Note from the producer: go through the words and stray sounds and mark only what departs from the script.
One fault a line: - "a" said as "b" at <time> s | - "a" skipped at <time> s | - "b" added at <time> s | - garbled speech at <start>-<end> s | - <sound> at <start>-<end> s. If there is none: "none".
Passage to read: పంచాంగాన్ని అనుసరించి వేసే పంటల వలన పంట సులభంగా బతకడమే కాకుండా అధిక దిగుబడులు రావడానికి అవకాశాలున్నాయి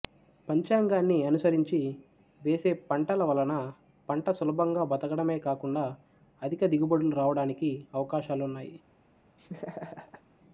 - laugh at 9.4-10.2 s